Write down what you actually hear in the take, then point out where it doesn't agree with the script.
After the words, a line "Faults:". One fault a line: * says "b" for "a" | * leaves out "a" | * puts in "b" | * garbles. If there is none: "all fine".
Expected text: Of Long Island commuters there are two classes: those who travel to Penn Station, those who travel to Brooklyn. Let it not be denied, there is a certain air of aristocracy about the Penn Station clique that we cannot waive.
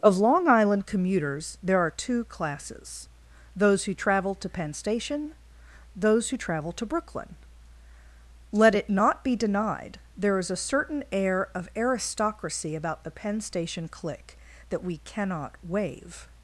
Of Long Island commuters there are two classes: those who travel to Penn Station, those who travel to Brooklyn. Let it not be denied, there is a certain air of aristocracy about the Penn Station clique that we cannot waive.
Faults:
all fine